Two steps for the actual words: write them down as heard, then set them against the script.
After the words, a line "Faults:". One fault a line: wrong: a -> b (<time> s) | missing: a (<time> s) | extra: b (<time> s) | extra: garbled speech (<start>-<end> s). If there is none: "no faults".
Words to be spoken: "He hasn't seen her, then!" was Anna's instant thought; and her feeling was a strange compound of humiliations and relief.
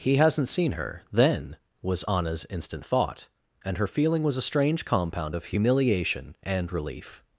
"He hasn't seen her, then!" was Anna's instant thought; and her feeling was a strange compound of humiliation and relief.
Faults:
wrong: humiliations -> humiliation (5.4 s)